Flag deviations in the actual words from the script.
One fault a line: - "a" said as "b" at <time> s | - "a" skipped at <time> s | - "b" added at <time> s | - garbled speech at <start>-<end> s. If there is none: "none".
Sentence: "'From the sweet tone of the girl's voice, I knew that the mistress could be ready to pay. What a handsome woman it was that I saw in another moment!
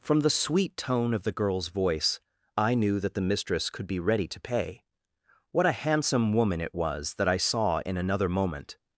none